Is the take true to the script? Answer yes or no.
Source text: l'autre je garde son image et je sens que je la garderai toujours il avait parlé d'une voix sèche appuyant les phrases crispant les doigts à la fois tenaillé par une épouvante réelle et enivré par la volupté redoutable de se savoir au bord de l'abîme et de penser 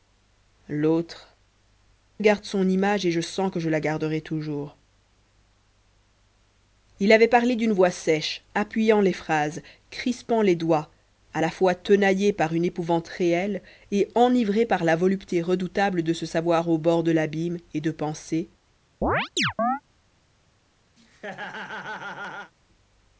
no